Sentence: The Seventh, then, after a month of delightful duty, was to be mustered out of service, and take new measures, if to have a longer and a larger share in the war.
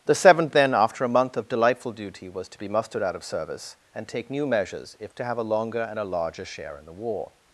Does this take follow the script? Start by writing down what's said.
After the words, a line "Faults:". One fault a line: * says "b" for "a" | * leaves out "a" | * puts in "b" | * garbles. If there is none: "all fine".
The Seventh, then, after a month of delightful duty, was to be mustered out of service, and take new measures, if to have a longer and a larger share in the war.
Faults:
all fine